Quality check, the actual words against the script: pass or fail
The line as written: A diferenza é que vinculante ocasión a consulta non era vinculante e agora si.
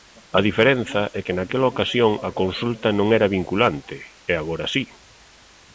fail